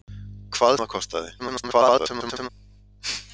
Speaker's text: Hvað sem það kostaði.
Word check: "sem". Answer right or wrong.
wrong